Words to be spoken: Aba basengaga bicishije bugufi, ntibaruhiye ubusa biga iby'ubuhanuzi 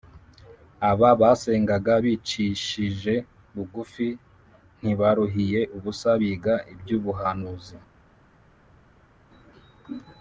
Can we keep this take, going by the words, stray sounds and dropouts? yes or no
yes